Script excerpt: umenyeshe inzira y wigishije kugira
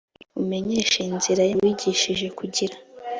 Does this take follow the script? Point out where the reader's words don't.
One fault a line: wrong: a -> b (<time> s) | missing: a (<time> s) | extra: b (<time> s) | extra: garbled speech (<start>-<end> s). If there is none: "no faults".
no faults